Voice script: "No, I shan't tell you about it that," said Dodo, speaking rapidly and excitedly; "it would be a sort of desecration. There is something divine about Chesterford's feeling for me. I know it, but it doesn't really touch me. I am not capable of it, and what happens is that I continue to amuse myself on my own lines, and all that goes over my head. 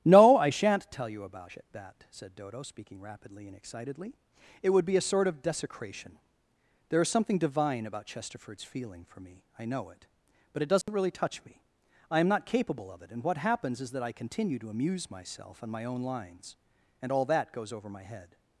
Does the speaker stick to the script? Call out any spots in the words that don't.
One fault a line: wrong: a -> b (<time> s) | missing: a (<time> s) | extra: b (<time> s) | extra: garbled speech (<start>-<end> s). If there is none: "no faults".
no faults